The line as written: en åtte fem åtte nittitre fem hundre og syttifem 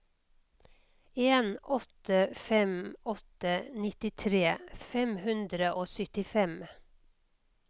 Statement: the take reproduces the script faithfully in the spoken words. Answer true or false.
true